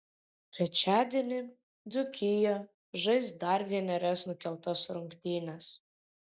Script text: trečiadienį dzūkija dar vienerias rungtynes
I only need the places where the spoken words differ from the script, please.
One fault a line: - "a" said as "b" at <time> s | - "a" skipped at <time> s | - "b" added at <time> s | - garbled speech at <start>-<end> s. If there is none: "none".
- "žais" added at 3.1 s
- "nukeltas" added at 4.3 s